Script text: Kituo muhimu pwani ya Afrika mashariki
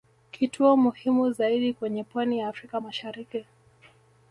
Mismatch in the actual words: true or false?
true